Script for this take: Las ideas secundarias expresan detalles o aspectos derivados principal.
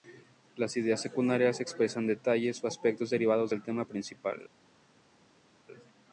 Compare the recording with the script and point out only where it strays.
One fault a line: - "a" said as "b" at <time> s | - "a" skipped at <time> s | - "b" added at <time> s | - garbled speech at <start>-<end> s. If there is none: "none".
- "del tema" added at 3.5 s